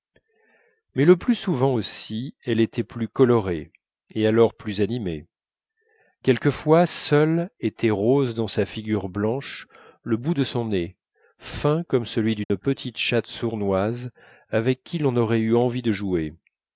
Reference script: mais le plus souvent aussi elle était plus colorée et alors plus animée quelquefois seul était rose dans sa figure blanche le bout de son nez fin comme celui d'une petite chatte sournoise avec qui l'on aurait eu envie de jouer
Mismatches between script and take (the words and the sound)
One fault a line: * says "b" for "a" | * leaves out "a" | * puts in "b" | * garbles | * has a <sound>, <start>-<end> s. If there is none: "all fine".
* has a dropout, 12.4-12.5 s